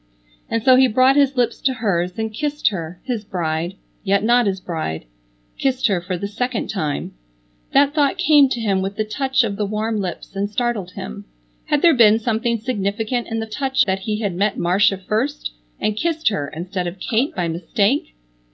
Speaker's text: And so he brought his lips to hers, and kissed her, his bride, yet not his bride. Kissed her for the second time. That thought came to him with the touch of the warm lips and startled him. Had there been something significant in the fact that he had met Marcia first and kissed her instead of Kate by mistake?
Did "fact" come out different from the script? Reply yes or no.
yes